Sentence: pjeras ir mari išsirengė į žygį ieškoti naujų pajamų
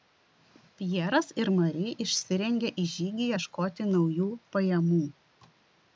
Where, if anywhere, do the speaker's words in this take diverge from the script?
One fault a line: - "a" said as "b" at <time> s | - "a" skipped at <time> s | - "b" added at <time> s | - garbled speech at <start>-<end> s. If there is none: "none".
none